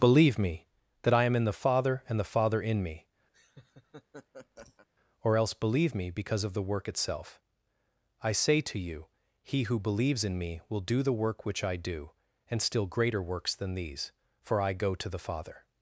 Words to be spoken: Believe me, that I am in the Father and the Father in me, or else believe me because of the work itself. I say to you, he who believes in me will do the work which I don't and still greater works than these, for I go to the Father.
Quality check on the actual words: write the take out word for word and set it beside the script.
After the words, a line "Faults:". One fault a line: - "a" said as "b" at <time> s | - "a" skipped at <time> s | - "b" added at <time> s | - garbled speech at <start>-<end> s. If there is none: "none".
Believe me, that I am in the Father and the Father in me, or else believe me because of the work itself. I say to you, he who believes in me will do the work which I do and still greater works than these, for I go to the Father.
Faults:
- "don't" said as "do" at 11.8 s